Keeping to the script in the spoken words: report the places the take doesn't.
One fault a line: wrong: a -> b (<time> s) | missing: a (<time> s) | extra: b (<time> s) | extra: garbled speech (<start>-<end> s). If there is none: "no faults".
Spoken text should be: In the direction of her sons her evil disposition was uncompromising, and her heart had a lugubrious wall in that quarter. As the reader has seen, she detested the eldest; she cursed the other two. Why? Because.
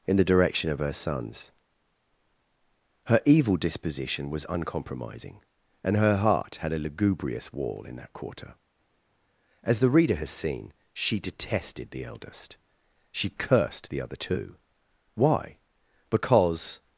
no faults